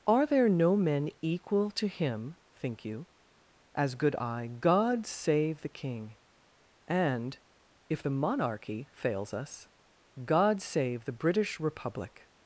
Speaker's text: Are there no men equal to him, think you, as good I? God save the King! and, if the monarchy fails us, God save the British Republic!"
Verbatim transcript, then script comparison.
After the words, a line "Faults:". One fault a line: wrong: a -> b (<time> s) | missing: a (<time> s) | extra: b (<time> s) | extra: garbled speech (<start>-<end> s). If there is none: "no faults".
Are there no men equal to him, think you, as good I? God save the King! and, if the monarchy fails us, God save the British Republic!"
Faults:
no faults